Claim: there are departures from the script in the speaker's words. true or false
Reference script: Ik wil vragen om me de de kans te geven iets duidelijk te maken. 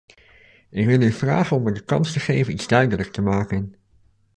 true